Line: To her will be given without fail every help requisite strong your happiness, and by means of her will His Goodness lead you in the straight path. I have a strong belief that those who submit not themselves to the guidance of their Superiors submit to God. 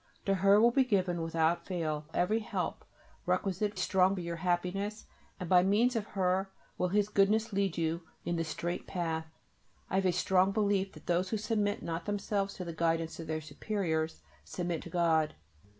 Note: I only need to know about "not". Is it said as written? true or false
true